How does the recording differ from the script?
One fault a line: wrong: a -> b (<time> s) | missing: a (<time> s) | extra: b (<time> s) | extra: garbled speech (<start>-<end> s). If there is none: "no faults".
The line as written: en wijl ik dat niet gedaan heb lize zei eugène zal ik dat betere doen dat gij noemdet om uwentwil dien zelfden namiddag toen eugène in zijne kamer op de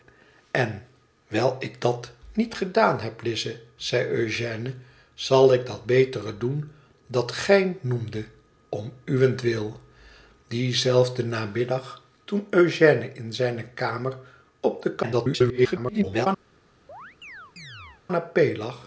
extra: garbled speech (15.0-16.3 s)